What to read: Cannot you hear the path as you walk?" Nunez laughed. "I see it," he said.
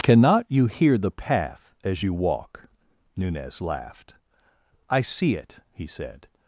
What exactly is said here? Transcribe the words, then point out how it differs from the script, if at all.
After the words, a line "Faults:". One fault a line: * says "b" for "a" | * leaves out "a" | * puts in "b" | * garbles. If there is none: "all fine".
Cannot you hear the path as you walk?" Nunez laughed. "I see it," he said.
Faults:
all fine